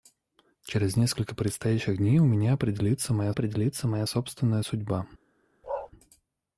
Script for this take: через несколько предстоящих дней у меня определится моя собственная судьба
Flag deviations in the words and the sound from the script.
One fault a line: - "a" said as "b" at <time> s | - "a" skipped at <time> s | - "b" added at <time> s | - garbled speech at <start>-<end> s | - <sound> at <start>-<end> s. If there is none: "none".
- "определится моя" added at 3.3 s
- bark at 5.6-5.9 s